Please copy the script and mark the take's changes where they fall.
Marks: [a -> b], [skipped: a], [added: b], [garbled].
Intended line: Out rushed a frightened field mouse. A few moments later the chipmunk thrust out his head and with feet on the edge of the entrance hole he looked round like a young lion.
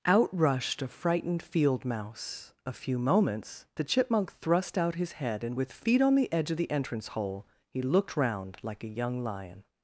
Out rushed a frightened field mouse. A few moments [skipped: later] the chipmunk thrust out his head and with feet on the edge of the entrance hole he looked round like a young lion.